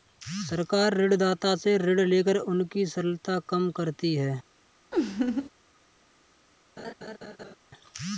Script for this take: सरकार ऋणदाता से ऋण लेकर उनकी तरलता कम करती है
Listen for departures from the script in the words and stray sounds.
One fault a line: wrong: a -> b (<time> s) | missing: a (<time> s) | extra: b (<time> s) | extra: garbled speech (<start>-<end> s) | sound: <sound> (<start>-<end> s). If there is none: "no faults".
sound: laugh (4.9-5.5 s)
sound: laugh (6.8-7.6 s)